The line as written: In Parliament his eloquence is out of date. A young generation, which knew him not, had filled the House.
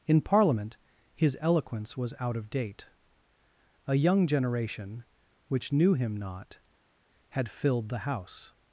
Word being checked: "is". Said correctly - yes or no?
no